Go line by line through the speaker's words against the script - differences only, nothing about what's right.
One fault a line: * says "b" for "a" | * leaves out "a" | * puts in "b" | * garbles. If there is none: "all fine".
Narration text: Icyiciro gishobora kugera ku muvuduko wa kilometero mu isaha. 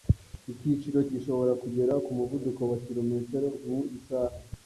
all fine